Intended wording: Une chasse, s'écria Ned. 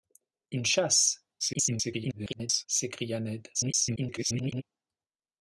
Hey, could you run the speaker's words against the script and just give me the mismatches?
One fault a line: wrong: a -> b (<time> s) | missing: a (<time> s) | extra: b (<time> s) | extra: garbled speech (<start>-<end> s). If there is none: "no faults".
extra: garbled speech (1.4-2.7 s)
extra: garbled speech (3.5-4.6 s)